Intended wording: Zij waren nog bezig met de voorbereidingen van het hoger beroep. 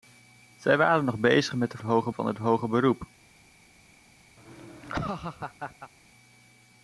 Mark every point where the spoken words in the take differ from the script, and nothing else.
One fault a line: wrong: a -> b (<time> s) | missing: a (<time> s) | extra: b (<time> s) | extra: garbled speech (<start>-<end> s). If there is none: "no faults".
wrong: voorbereidingen -> hoger (1.8 s)